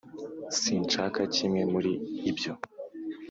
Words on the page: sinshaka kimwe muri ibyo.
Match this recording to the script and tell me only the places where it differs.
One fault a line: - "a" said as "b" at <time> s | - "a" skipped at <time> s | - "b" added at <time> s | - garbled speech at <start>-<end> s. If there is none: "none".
none